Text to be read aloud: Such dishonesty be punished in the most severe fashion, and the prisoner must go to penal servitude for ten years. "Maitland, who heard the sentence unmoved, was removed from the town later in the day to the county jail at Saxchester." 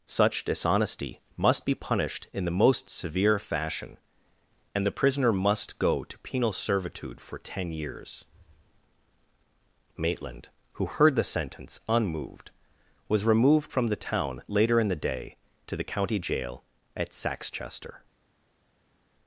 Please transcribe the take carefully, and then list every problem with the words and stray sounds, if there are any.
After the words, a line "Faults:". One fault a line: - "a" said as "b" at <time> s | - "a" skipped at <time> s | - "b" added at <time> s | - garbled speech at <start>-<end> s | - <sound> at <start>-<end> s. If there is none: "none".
Such dishonesty must be punished in the most severe fashion, and the prisoner must go to penal servitude for ten years. "Maitland, who heard the sentence unmoved, was removed from the town later in the day to the county jail at Saxchester."
Faults:
- "must" added at 1.4 s